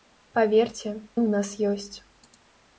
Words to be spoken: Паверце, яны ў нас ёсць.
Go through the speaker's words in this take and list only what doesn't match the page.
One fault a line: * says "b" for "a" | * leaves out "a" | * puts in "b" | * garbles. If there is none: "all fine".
* leaves out "яны"